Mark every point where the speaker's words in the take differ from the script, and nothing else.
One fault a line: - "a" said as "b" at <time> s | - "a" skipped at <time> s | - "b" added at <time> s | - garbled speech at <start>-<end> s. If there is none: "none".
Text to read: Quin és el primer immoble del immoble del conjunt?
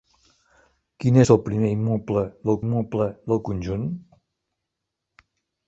none